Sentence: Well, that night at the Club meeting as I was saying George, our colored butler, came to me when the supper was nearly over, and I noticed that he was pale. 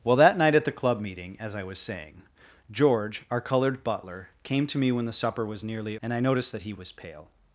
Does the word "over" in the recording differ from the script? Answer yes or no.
yes